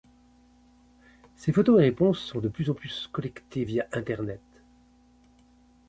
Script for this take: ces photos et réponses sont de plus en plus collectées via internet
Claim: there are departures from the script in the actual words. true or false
false